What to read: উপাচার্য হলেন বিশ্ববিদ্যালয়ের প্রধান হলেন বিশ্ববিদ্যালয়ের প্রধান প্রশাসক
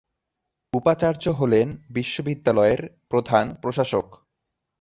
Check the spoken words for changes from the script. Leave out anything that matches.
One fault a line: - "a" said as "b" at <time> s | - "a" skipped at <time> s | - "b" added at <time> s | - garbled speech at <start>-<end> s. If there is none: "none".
- "হলেন বিশ্ববিদ্যালয়ের প্রধান" skipped at 3.4 s